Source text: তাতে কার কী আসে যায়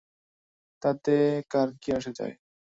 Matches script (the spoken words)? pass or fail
pass